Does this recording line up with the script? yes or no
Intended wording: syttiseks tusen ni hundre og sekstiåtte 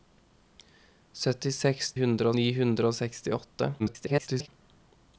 no